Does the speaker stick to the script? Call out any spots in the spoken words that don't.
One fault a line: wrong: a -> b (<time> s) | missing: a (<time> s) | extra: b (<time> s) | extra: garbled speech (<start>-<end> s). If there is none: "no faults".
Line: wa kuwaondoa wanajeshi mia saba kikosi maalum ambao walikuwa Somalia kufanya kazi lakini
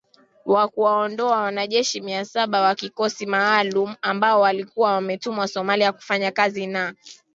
extra: wa (2.6 s)
extra: wametumwa (4.9 s)
wrong: lakini -> na (6.7 s)